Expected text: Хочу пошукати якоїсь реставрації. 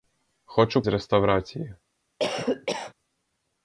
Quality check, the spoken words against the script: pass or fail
fail